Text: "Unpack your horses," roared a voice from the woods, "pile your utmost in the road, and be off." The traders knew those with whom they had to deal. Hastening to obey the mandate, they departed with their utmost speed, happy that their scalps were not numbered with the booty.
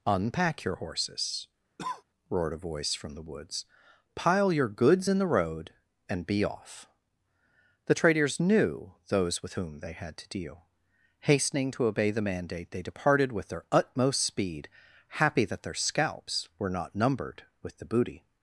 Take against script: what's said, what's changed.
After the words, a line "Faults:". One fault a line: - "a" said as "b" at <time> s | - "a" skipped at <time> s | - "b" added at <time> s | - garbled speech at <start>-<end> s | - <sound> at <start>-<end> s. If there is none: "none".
"Unpack your horses," roared a voice from the woods, "pile your goods in the road, and be off." The traders knew those with whom they had to deal. Hastening to obey the mandate, they departed with their utmost speed, happy that their scalps were not numbered with the booty.
Faults:
- cough at 1.8-2.0 s
- "utmost" said as "goods" at 4.7 s